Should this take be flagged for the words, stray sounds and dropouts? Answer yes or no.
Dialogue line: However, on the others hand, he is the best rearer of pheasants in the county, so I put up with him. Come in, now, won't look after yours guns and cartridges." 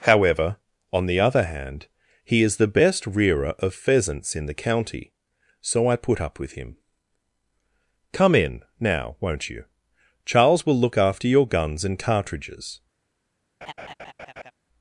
yes